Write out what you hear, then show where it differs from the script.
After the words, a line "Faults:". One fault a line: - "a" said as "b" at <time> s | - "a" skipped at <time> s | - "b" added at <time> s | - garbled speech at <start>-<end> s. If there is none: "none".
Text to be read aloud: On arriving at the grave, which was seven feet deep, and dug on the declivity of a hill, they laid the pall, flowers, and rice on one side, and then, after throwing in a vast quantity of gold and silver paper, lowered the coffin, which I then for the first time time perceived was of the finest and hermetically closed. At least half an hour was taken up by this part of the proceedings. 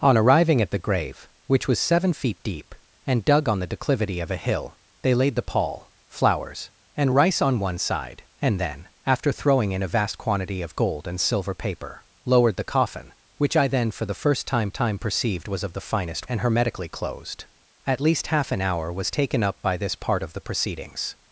On arriving at the grave, which was seven feet deep, and dug on the declivity of a hill, they laid the pall, flowers, and rice on one side, and then, after throwing in a vast quantity of gold and silver paper, lowered the coffin, which I then for the first time time perceived was of the finest and hermetically closed. At least half an hour was taken up by this part of the proceedings.
Faults:
none